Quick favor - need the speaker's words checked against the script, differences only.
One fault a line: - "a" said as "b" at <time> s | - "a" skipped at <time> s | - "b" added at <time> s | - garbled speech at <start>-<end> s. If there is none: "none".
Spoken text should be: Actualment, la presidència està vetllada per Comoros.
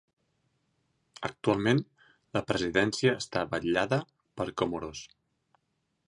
none